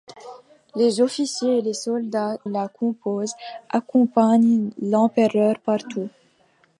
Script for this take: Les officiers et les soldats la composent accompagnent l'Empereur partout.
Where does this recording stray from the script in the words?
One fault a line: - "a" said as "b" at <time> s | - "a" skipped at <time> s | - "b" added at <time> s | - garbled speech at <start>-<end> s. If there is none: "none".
none